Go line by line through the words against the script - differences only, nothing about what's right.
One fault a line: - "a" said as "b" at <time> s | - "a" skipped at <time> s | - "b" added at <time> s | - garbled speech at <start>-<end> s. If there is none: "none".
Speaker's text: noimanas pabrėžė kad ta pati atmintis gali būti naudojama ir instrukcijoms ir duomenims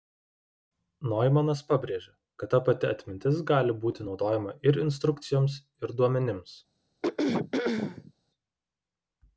none